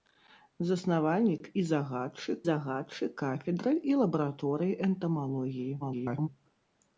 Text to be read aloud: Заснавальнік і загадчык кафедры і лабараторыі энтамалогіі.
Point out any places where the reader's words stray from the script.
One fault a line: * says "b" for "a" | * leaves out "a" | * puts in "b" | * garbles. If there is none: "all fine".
* puts in "загадчык"
* garbles